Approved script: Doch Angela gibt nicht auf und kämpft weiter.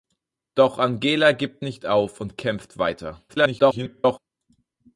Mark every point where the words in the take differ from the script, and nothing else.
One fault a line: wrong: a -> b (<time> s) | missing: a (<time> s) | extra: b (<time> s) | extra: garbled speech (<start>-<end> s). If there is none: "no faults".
extra: garbled speech (3.3-4.2 s)